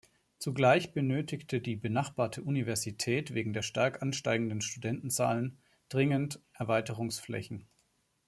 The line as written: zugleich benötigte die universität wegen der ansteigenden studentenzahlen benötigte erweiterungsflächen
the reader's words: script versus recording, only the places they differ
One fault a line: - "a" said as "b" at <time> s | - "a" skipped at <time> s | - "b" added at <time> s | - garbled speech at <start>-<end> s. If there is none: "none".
- "benachbarte" added at 1.8 s
- "stark" added at 3.6 s
- "benötigte" said as "dringend" at 5.9 s